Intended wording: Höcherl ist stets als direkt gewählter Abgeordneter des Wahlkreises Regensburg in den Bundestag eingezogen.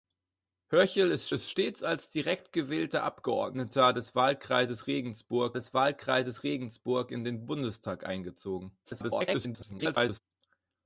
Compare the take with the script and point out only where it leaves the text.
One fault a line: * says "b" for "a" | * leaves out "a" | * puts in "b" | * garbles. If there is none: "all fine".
* puts in "ist"
* puts in "des Wahlkreises Regensburg"
* garbles